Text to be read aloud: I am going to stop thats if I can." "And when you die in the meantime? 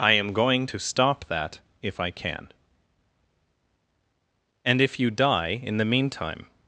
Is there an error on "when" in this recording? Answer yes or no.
yes